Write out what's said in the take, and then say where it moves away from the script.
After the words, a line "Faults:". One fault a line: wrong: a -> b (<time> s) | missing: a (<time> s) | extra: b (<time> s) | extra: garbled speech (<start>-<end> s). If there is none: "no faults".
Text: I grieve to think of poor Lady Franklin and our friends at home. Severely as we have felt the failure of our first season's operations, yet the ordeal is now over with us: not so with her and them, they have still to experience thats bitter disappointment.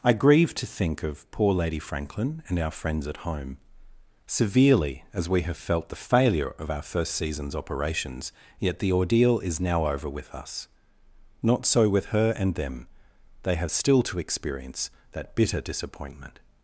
I grieve to think of poor Lady Franklin and our friends at home. Severely as we have felt the failure of our first season's operations, yet the ordeal is now over with us: not so with her and them, they have still to experience that bitter disappointment.
Faults:
wrong: thats -> that (15.1 s)